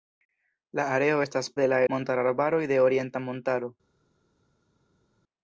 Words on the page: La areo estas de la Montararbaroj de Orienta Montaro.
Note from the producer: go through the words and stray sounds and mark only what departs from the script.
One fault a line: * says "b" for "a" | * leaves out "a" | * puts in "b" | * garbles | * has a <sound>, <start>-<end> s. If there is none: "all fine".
all fine